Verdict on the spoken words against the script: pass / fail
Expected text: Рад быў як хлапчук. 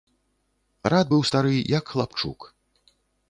fail